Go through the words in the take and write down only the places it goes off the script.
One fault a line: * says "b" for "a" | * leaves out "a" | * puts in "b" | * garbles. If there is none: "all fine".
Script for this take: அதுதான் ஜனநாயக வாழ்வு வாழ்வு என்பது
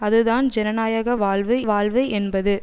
all fine